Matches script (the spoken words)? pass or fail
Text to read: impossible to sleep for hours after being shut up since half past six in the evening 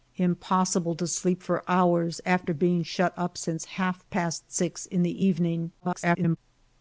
fail